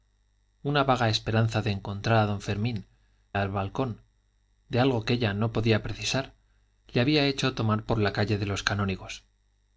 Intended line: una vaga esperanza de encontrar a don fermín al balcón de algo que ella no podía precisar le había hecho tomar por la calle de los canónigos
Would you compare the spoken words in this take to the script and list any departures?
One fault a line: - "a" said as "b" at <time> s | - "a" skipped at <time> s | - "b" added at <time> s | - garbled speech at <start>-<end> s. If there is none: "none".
none